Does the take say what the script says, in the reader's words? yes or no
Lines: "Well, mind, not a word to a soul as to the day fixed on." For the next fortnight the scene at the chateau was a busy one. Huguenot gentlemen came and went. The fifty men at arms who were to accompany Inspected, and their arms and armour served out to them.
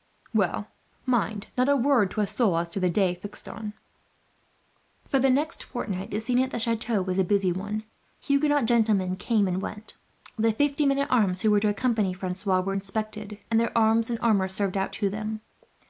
no